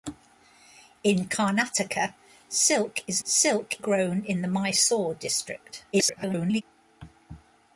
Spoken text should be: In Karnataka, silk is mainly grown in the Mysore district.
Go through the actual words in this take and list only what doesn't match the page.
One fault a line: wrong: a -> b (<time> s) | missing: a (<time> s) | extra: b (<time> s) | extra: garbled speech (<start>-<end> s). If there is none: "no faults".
wrong: mainly -> silk (3.2 s)
extra: garbled speech (5.9-6.6 s)